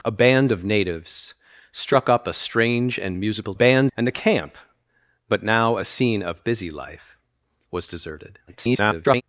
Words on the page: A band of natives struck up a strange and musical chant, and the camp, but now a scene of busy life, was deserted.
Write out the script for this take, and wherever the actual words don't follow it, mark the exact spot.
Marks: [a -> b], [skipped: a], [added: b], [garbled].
A band of natives struck up a strange and musical [chant, -> band] and the camp, but now a scene of busy life, was deserted. [garbled]